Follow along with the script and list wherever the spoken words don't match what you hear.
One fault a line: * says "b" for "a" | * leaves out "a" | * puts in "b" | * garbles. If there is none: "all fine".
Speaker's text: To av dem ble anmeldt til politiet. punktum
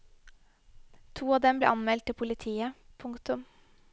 all fine